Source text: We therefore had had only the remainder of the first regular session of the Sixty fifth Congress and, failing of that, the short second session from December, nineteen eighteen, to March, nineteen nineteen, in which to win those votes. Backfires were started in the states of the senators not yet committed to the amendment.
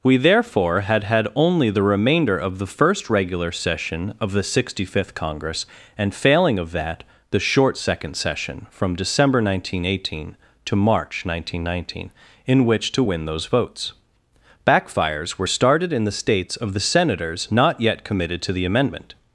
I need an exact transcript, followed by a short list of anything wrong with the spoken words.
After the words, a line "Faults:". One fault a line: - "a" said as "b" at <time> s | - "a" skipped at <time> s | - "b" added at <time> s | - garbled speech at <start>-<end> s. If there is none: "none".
We therefore had had only the remainder of the first regular session of the Sixty fifth Congress and, failing of that, the short second session from December, nineteen eighteen, to March, nineteen nineteen, in which to win those votes. Backfires were started in the states of the senators not yet committed to the amendment.
Faults:
none